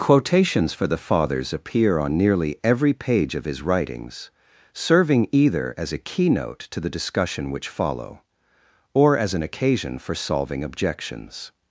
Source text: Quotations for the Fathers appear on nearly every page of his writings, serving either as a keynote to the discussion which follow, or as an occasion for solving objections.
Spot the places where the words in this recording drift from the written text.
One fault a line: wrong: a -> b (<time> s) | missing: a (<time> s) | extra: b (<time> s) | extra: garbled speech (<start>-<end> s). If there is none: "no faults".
no faults